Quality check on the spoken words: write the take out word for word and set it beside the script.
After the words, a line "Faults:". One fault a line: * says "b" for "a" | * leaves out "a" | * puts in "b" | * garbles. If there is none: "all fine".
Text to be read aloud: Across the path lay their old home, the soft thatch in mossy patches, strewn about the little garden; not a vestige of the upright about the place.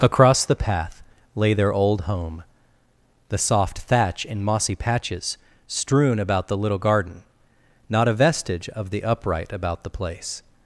Across the path lay their old home, the soft thatch in mossy patches, strewn about the little garden; not a vestige of the upright about the place.
Faults:
all fine